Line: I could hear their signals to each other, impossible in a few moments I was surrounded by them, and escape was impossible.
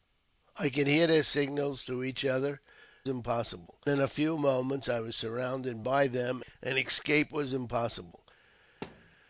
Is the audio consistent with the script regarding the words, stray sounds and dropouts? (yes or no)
no